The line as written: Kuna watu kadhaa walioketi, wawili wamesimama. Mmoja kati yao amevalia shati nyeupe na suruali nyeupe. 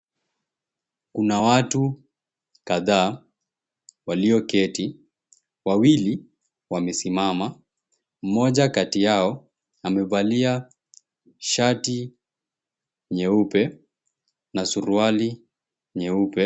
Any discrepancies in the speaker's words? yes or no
no